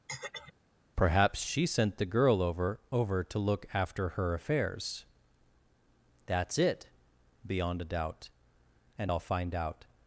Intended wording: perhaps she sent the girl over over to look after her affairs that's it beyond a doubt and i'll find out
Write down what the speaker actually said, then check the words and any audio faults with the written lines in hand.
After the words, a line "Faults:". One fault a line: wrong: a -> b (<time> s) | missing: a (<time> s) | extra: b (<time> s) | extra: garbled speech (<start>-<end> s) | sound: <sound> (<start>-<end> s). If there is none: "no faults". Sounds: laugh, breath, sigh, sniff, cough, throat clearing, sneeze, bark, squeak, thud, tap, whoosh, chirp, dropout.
perhaps she sent the girl over over to look after her affairs that's it beyond a doubt and i'll find out
Faults:
sound: throat clearing (0.1-0.5 s)